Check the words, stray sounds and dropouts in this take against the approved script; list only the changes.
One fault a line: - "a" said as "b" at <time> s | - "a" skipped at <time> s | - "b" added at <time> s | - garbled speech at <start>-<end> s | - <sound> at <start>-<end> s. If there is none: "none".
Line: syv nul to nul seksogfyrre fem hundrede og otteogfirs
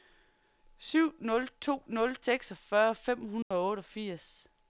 - dropout at 3.4-3.5 s